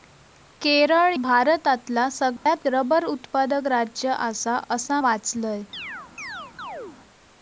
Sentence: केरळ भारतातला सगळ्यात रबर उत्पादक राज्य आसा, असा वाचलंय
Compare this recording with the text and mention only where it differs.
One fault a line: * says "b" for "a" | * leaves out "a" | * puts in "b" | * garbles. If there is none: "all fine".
all fine